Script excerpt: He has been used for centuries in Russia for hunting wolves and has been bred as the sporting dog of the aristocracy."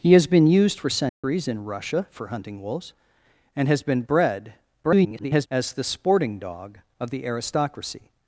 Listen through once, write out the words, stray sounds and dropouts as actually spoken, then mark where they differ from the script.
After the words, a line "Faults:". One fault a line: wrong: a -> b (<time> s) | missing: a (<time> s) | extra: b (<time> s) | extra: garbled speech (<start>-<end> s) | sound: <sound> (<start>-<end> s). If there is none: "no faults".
He has been used for centuries in Russia for hunting wolves and has been bred [garbled] as the sporting dog of the aristocracy."
Faults:
sound: dropout (1.1-1.2 s)
extra: garbled speech (4.8-5.5 s)